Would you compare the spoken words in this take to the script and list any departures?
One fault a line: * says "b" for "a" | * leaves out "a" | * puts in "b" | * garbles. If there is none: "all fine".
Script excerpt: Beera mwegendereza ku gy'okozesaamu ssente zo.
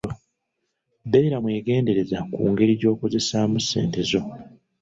* puts in "ngeri"